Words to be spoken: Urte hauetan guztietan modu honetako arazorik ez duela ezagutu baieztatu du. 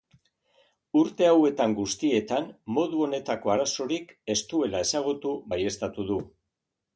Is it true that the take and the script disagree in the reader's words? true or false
false